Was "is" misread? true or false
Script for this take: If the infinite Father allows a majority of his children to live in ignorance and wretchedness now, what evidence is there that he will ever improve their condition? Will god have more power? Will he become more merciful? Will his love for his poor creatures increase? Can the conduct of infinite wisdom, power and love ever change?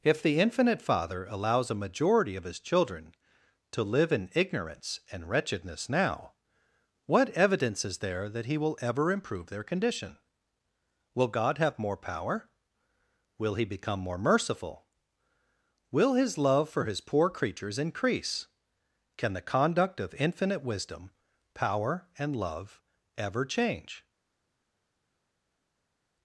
false